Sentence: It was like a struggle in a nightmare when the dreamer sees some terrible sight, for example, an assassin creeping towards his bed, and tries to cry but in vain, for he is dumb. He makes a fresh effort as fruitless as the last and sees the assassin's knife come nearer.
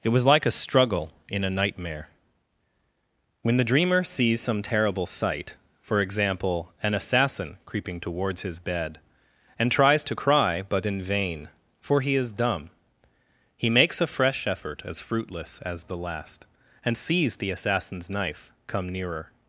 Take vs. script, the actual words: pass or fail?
pass